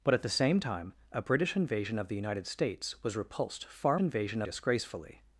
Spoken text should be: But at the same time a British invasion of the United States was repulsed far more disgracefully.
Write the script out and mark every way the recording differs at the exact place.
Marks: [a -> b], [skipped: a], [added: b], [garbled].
But at the same time a British invasion of the United States was repulsed far [more -> invasion] disgracefully.